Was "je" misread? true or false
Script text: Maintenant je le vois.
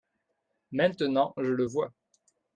false